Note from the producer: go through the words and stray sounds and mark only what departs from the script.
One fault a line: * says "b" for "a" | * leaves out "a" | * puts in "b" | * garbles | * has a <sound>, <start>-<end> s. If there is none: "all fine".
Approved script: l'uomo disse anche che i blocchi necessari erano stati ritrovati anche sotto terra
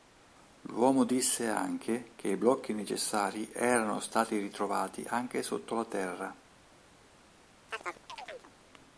* puts in "la"
* has a chirp, 7.7-8.5 s